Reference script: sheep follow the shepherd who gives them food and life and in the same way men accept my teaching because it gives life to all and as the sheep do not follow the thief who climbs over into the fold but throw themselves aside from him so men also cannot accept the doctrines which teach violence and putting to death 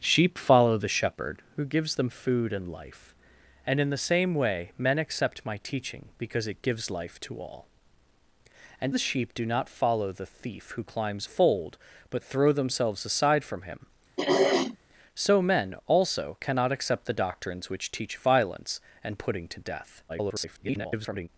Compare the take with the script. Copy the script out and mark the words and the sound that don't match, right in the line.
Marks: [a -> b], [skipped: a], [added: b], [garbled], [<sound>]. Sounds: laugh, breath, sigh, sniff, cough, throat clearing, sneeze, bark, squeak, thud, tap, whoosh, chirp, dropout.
sheep follow the shepherd who gives them food and life and in the same way men accept my teaching because it gives life to all and [skipped: as] the sheep do not follow the thief who climbs [skipped: over into the] fold but throw themselves aside from him [throat clearing] so men also cannot accept the doctrines which teach violence and putting to death [garbled]